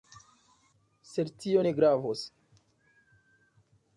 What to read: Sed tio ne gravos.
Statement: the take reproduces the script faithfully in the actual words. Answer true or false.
true